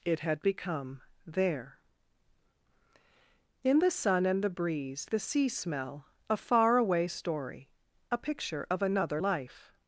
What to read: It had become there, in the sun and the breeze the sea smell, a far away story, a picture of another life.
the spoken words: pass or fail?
pass